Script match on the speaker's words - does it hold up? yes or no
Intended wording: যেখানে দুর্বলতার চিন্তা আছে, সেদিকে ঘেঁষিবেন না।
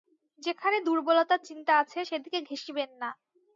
yes